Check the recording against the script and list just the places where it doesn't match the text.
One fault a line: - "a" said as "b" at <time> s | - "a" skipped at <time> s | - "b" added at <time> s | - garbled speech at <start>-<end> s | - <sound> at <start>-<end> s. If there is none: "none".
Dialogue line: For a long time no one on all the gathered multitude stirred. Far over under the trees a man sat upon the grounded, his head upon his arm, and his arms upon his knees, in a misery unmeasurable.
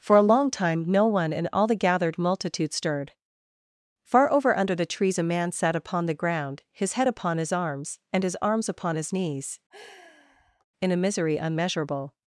- "on" said as "in" at 1.3 s
- "grounded" said as "ground" at 6.2 s
- "arm" said as "arms" at 7.5 s
- sigh at 9.7-10.7 s